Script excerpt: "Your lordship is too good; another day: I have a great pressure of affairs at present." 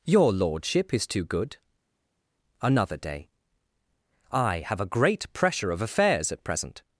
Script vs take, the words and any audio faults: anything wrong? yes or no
no